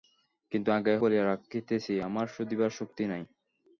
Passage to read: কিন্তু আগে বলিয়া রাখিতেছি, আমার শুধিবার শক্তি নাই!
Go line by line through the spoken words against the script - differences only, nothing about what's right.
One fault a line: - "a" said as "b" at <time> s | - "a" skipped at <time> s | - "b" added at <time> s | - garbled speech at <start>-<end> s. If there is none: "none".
none